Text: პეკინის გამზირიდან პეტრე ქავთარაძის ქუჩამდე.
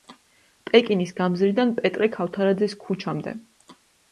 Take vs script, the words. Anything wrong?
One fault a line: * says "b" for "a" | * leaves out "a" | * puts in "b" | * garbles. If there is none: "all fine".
all fine